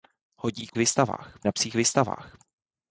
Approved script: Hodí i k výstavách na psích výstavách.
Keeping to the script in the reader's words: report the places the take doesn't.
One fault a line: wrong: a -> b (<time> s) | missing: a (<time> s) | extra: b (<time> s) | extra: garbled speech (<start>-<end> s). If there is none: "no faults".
no faults